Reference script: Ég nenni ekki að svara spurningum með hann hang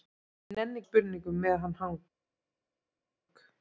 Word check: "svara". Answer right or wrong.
wrong